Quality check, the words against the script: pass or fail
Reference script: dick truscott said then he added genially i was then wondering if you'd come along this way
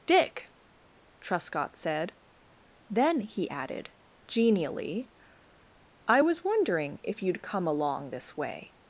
fail